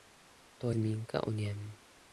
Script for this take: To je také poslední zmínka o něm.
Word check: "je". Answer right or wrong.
wrong